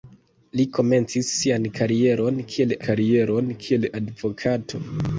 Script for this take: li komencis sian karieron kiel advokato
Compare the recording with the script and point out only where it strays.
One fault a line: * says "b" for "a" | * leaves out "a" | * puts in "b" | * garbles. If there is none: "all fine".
* puts in "karieron kiel"